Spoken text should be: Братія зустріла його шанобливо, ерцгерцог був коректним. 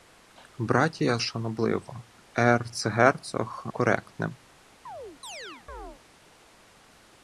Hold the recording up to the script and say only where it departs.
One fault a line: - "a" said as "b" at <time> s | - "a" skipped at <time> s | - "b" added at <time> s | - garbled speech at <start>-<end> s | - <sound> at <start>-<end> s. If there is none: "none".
- "зустріла його" skipped at 1.2 s
- "був" skipped at 3.6 s
- chirp at 4.9-6.0 s